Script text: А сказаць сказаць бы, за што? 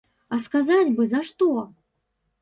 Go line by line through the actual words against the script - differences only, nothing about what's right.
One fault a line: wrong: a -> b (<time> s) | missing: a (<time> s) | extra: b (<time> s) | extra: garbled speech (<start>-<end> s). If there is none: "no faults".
missing: сказаць (0.9 s)